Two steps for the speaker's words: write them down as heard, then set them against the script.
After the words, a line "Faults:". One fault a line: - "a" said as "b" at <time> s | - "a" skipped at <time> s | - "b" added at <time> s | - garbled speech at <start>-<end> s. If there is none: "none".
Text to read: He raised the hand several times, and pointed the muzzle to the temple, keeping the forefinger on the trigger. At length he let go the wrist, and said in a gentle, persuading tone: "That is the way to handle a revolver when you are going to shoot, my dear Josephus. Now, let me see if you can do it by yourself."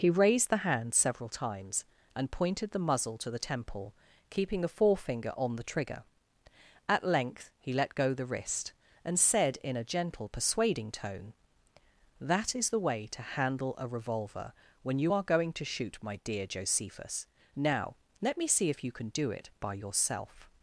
He raised the hand several times, and pointed the muzzle to the temple, keeping a forefinger on the trigger. At length he let go the wrist, and said in a gentle, persuading tone: "That is the way to handle a revolver when you are going to shoot, my dear Josephus. Now, let me see if you can do it by yourself."
Faults:
- "the" said as "a" at 4.6 s